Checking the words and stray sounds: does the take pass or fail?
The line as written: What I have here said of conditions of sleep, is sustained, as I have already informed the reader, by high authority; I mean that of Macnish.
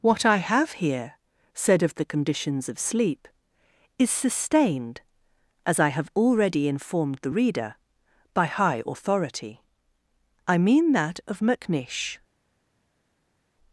fail